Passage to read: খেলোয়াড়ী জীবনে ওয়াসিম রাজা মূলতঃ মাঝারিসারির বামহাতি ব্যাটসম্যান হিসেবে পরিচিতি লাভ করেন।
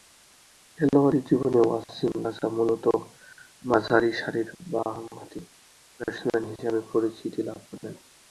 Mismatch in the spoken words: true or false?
false